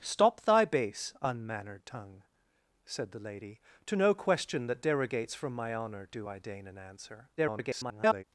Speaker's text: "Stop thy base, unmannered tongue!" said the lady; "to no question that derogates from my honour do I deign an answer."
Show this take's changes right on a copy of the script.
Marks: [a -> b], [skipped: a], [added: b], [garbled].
"Stop thy base, unmannered tongue!" said the lady; "to no question that derogates from my honour do I deign an answer." [garbled]